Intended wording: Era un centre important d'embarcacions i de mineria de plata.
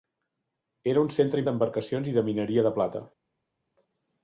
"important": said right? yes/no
no